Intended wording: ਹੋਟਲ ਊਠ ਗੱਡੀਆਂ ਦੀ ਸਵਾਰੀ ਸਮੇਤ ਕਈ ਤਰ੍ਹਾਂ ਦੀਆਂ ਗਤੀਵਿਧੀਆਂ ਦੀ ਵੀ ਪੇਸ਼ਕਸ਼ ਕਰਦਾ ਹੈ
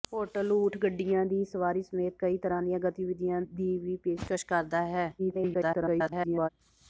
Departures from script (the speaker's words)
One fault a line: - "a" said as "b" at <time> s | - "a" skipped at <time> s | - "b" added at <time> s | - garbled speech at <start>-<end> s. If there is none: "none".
- garbled speech at 5.2-6.5 s